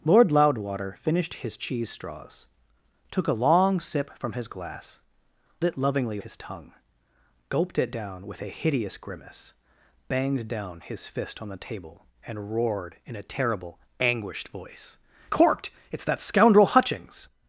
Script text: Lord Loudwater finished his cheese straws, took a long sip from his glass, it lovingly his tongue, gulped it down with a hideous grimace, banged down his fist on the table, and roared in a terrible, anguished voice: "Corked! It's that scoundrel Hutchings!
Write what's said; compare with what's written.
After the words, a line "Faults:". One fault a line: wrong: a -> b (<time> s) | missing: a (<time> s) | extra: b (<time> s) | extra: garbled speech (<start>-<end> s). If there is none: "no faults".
Lord Loudwater finished his cheese straws, took a long sip from his glass, it lovingly his tongue, gulped it down with a hideous grimace, banged down his fist on the table, and roared in a terrible, anguished voice: "Corked! It's that scoundrel Hutchings!
Faults:
no faults